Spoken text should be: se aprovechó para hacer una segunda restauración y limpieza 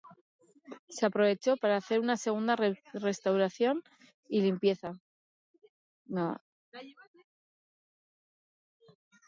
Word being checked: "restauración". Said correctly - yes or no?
yes